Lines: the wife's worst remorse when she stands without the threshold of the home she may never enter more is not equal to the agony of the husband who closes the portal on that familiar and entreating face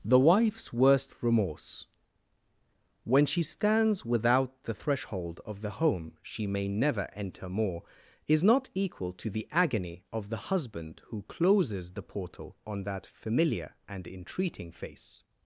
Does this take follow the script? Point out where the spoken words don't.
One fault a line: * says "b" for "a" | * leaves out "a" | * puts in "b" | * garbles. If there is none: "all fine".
all fine